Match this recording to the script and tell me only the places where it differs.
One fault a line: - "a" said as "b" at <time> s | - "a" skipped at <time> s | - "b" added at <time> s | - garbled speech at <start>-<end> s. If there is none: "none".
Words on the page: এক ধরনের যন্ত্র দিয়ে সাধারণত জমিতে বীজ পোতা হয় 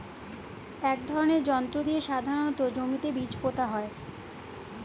none